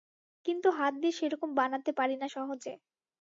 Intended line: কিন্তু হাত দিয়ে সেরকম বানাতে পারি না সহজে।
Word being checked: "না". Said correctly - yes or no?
yes